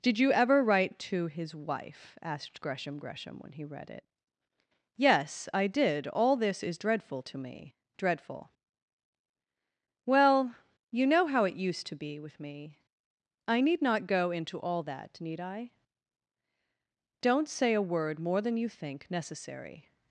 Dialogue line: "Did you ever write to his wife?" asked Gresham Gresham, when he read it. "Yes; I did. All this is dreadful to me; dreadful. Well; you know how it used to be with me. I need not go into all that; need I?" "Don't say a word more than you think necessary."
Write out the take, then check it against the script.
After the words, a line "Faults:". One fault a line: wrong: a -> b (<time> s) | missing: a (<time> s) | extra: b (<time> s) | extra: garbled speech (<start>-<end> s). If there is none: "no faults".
"Did you ever write to his wife?" asked Gresham Gresham, when he read it. "Yes; I did. All this is dreadful to me; dreadful. Well; you know how it used to be with me. I need not go into all that; need I?" "Don't say a word more than you think necessary."
Faults:
no faults